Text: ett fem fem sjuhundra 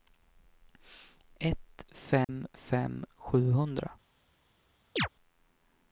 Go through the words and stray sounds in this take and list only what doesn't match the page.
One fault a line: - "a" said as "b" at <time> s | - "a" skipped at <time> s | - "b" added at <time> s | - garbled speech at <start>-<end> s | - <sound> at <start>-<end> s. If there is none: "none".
- dropout at 2.2-2.3 s
- chirp at 5.0-5.1 s